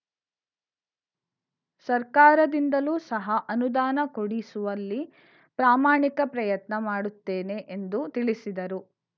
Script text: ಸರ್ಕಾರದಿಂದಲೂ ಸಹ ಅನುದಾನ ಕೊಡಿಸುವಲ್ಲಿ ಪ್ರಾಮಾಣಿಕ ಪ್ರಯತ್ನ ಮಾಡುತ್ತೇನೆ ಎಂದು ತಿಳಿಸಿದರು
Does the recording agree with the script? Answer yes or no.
yes